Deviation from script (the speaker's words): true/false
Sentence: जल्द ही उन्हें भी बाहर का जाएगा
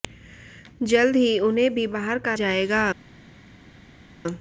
false